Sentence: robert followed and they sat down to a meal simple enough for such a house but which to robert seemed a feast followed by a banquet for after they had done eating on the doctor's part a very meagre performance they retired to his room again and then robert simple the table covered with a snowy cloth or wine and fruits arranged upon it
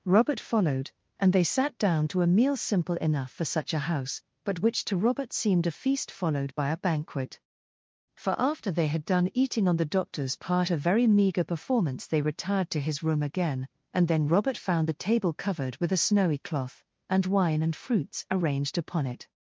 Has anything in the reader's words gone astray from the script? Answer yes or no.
yes